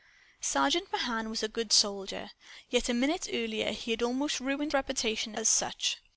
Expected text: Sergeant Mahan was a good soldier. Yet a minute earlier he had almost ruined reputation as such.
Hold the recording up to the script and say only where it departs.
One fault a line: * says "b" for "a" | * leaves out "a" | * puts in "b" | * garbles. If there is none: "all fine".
all fine